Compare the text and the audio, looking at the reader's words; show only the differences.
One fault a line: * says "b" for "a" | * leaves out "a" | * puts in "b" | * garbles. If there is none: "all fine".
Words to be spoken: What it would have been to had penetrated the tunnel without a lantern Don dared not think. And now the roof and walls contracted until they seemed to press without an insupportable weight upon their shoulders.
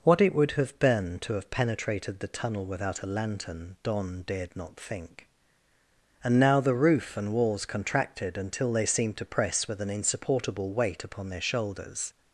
* says "have" for "had"
* says "with" for "without"